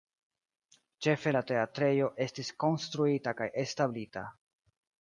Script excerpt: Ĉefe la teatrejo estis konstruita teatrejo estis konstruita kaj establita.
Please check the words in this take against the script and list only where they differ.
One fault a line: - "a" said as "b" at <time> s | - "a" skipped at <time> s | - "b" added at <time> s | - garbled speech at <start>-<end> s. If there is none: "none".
- "teatrejo estis konstruita" skipped at 3.4 s